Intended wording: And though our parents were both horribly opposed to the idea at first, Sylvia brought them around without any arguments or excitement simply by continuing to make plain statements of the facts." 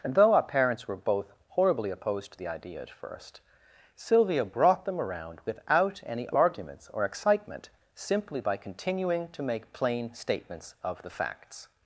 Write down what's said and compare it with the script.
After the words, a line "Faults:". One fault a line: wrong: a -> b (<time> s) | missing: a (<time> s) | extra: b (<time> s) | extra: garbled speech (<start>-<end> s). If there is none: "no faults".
And though our parents were both horribly opposed to the idea at first, Sylvia brought them around without any arguments or excitement simply by continuing to make plain statements of the facts."
Faults:
no faults